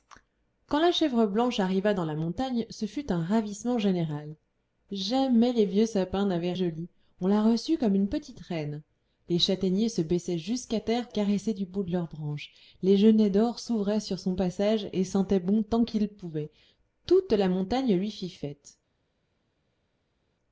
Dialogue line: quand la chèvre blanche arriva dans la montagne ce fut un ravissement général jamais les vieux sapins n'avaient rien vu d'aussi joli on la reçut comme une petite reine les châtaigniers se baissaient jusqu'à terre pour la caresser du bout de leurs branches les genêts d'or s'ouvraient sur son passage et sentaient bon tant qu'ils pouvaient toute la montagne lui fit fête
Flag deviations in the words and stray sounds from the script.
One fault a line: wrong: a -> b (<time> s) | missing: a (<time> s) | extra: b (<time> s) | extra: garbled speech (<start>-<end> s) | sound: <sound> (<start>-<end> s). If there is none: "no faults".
missing: rien vu d'aussi (6.5 s)
missing: pour la (11.1 s)